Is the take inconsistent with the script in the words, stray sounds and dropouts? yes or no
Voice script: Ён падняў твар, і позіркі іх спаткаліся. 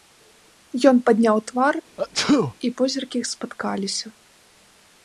yes